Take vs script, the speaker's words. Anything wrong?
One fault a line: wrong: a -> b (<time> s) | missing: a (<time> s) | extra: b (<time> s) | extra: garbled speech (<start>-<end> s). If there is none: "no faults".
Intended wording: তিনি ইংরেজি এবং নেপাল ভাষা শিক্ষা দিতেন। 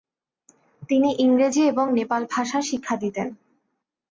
no faults